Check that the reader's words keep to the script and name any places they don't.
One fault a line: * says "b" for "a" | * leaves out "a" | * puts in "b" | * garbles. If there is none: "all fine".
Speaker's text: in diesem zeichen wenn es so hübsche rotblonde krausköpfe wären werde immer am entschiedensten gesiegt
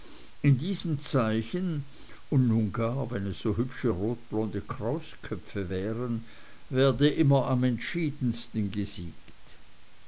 * puts in "und nun gar"